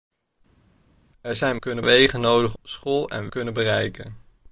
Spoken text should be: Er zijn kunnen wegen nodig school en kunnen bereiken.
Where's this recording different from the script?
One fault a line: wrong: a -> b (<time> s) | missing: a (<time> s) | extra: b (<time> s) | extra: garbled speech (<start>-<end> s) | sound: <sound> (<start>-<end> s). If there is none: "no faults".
no faults